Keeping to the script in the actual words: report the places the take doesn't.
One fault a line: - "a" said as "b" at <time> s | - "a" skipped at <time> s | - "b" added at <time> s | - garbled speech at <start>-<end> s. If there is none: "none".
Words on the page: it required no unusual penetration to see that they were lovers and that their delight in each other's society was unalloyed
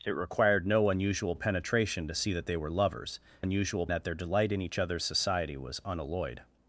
- "and" said as "unusual" at 3.4 s